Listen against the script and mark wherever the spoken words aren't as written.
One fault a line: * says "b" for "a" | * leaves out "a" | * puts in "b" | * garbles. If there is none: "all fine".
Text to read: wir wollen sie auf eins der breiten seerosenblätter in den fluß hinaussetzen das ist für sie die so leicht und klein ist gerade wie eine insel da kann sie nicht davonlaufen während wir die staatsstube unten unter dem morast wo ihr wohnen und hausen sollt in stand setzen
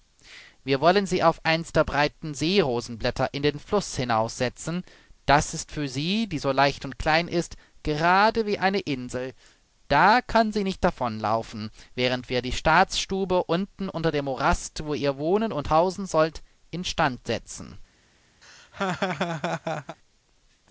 all fine